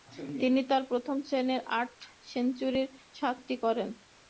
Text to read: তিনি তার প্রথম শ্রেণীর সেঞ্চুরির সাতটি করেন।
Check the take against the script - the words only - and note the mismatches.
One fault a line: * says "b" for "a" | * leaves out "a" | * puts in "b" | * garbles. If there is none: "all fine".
* puts in "আট"